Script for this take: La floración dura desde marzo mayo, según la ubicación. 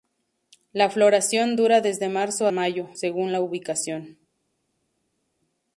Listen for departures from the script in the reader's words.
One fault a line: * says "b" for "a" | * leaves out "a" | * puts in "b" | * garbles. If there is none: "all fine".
all fine